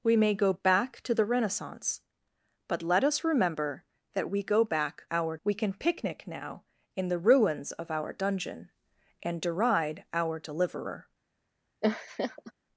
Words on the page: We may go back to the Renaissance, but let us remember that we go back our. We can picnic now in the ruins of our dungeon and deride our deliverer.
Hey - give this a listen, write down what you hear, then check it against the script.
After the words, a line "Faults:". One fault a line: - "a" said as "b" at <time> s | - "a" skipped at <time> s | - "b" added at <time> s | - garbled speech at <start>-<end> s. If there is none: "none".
We may go back to the Renaissance, but let us remember that we go back our. We can picnic now in the ruins of our dungeon and deride our deliverer.
Faults:
none